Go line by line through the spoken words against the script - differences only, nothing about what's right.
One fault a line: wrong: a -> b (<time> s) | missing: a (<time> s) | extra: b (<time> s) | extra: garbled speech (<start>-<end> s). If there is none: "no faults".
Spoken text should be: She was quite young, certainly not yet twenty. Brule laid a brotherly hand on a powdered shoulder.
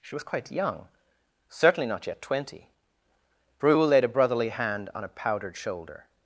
no faults